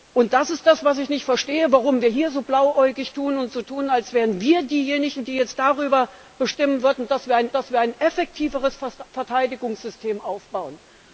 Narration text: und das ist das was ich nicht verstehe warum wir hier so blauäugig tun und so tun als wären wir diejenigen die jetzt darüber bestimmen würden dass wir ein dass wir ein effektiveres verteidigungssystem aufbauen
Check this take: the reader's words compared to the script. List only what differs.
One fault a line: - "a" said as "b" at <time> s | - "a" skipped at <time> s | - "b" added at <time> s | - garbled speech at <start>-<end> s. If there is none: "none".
none